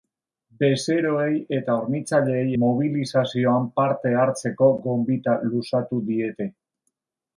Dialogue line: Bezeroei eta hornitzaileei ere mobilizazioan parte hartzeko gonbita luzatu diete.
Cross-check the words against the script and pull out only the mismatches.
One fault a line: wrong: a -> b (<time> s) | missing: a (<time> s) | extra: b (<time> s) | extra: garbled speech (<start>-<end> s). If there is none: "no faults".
missing: ere (2.5 s)